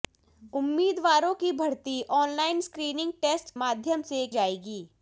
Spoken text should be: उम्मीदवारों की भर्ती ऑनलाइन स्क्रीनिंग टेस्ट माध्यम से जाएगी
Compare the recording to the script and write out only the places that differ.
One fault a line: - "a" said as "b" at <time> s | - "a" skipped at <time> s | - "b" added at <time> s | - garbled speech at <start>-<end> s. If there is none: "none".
none